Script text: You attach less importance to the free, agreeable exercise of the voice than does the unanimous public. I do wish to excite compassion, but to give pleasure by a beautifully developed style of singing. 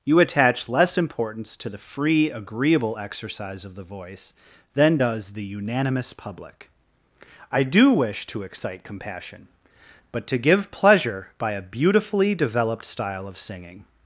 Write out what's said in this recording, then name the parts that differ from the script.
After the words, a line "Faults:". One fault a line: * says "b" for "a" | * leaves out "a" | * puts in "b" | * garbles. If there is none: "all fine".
You attach less importance to the free, agreeable exercise of the voice than does the unanimous public. I do wish to excite compassion, but to give pleasure by a beautifully developed style of singing.
Faults:
all fine